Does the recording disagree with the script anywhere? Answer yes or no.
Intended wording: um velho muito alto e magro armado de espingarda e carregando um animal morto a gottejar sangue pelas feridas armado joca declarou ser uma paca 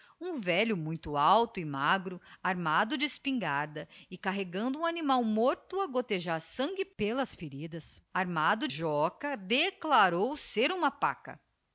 no